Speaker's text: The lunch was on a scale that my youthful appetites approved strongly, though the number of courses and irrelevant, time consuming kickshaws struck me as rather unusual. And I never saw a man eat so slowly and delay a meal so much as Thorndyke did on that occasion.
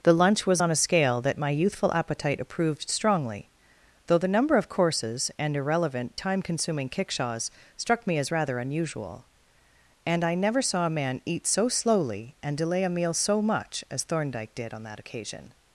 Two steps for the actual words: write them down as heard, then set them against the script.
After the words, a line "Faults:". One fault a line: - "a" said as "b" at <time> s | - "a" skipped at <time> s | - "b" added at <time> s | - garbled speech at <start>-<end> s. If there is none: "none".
The lunch was on a scale that my youthful appetite approved strongly, though the number of courses and irrelevant, time consuming kickshaws struck me as rather unusual. And I never saw a man eat so slowly and delay a meal so much as Thorndyke did on that occasion.
Faults:
- "appetites" said as "appetite" at 1.9 s